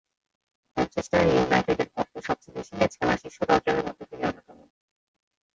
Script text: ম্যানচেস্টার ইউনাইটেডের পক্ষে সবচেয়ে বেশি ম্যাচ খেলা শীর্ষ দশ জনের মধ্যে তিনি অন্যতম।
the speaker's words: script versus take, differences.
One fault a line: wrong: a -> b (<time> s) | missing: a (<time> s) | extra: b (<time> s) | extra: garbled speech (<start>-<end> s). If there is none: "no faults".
no faults